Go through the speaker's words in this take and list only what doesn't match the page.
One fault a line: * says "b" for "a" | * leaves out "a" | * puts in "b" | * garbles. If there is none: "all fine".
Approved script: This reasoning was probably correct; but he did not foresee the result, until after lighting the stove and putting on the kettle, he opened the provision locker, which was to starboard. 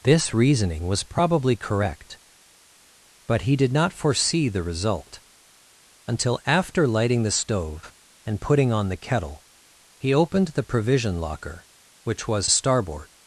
* leaves out "to"